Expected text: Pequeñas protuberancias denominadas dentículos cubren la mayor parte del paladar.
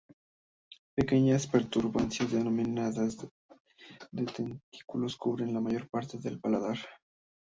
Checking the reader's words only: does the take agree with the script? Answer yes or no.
yes